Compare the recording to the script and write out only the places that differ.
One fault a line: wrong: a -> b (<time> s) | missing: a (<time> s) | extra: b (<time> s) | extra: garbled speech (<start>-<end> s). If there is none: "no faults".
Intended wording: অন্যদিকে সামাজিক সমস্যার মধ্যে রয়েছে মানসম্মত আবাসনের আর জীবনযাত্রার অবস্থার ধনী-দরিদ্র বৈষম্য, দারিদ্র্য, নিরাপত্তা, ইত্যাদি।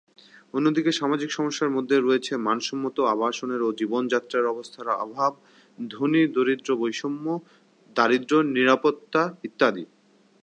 wrong: আর -> ও (3.6 s)
extra: অভাব (5.0 s)